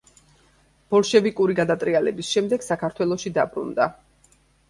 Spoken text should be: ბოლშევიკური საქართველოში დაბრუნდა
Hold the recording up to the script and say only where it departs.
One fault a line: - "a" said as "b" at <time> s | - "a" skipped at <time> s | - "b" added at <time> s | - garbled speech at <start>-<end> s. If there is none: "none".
- "გადატრიალების შემდეგ" added at 1.6 s